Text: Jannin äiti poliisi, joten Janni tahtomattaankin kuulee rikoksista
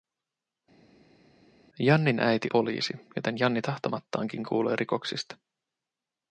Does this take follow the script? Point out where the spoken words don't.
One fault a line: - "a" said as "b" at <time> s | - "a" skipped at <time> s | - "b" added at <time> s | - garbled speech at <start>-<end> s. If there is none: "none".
none